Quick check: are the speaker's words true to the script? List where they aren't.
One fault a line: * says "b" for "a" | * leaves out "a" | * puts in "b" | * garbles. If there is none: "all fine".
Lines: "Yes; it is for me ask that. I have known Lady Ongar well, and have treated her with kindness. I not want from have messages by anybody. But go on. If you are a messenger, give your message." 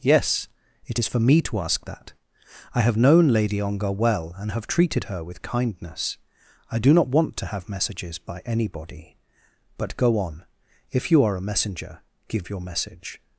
* puts in "to"
* puts in "do"
* says "to" for "from"